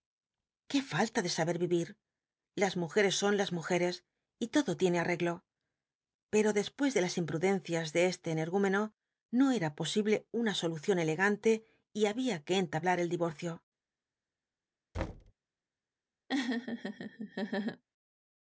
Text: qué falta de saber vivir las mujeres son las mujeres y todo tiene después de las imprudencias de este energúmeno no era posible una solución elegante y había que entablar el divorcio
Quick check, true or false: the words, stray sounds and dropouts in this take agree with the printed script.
false